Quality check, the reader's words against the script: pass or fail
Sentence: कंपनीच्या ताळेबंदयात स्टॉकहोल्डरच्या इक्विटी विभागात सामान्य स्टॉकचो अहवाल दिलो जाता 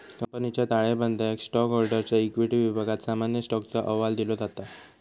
pass